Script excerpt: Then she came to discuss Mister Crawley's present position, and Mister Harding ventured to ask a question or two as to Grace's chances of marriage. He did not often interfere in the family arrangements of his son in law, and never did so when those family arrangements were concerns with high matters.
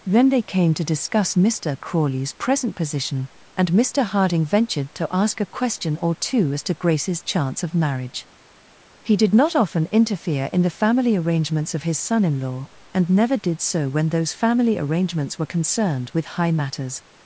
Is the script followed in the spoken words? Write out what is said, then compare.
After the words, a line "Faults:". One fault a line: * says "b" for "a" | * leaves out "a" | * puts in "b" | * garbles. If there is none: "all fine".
Then they came to discuss Mister Crawley's present position, and Mister Harding ventured to ask a question or two as to Grace's chance of marriage. He did not often interfere in the family arrangements of his son in law, and never did so when those family arrangements were concerned with high matters.
Faults:
* says "they" for "she"
* says "chance" for "chances"
* says "concerned" for "concerns"